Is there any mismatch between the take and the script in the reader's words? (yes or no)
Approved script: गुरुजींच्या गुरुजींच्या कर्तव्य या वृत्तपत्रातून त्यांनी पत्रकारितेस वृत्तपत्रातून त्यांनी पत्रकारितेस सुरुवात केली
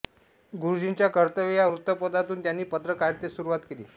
yes